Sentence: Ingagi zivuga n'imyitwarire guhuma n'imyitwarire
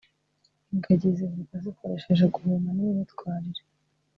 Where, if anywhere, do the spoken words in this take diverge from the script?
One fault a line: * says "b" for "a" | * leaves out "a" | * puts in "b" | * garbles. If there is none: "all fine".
* says "zikoresheje" for "n'imyitwarire"